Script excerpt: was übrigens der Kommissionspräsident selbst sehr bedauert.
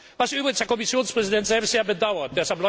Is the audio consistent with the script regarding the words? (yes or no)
yes